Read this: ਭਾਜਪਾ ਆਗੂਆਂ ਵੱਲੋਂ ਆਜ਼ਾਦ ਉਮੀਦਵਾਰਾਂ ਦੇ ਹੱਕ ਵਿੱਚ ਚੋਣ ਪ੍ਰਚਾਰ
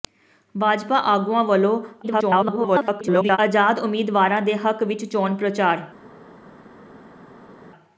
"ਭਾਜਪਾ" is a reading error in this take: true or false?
false